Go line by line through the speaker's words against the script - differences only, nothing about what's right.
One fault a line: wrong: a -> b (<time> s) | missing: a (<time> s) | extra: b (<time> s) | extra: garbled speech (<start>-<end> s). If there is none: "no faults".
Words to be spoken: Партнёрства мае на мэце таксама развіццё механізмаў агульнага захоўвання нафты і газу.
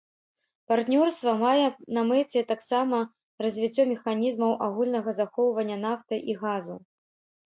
no faults